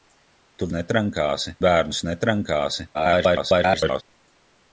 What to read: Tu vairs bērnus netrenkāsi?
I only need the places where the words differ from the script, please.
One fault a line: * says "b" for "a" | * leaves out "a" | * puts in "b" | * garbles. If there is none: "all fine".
* says "netrenkāsi" for "vairs"
* garbles